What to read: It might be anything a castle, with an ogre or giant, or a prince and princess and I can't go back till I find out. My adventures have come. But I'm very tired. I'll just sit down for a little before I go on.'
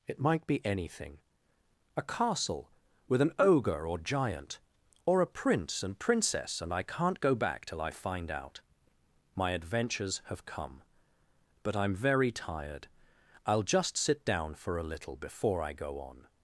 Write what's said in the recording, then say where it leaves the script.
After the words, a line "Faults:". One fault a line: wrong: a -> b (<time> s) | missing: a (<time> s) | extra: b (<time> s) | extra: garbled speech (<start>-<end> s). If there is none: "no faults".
It might be anything a castle, with an ogre or giant, or a prince and princess and I can't go back till I find out. My adventures have come. But I'm very tired. I'll just sit down for a little before I go on.'
Faults:
no faults